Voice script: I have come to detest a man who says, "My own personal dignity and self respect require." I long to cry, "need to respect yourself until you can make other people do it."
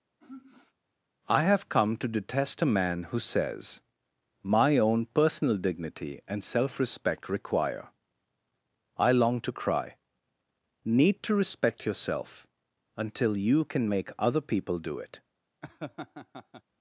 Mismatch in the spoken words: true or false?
false